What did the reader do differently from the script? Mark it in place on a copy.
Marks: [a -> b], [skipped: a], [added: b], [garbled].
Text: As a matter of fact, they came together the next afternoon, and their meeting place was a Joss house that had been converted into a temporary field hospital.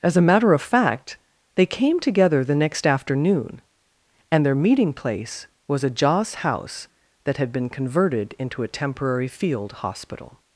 As a matter of fact, they came together the next afternoon, and their meeting place was a Joss house that had been converted into a temporary field hospital.